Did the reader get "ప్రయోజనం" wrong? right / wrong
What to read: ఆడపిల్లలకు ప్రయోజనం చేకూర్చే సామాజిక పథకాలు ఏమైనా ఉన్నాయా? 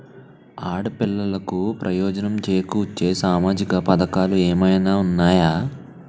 right